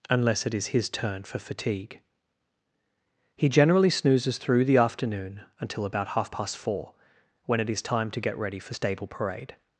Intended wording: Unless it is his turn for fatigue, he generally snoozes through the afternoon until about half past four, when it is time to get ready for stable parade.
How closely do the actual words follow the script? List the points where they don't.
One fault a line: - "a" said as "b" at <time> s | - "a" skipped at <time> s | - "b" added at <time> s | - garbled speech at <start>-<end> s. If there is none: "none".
none